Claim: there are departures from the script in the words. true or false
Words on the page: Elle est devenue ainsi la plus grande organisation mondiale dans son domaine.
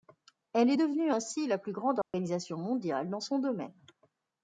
false